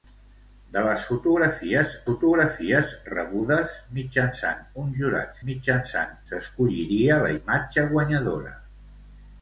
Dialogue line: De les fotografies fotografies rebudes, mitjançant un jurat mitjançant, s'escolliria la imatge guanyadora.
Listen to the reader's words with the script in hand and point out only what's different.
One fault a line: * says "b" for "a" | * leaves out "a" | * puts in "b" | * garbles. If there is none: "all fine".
all fine